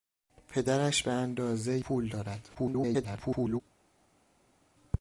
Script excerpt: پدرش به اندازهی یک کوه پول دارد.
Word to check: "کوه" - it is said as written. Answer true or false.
false